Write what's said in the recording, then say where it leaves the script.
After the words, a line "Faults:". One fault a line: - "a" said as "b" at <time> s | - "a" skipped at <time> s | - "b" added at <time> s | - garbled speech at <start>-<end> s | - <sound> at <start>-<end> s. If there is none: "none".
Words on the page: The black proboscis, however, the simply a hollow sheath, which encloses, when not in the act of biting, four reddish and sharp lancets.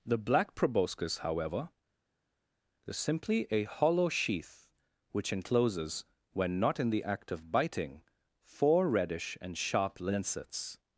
The black proboscis, however, is simply a hollow sheath, which encloses, when not in the act of biting, four reddish and sharp lancets.
Faults:
- "the" said as "is" at 2.9 s